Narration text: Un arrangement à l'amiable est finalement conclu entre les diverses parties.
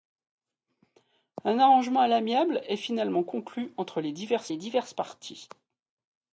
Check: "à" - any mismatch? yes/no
no